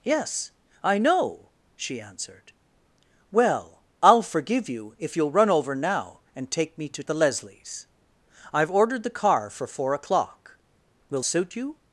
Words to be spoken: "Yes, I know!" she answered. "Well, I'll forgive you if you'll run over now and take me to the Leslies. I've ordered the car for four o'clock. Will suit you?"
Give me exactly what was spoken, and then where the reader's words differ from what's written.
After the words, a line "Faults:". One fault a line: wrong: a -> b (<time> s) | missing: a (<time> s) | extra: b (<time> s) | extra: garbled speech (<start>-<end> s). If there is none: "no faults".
"Yes, I know!" she answered. "Well, I'll forgive you if you'll run over now and take me to the Leslies. I've ordered the car for four o'clock. Will suit you?"
Faults:
no faults